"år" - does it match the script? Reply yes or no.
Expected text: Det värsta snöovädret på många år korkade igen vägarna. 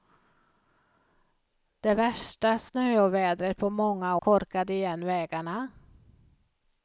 no